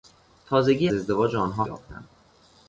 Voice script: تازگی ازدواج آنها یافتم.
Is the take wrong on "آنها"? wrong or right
right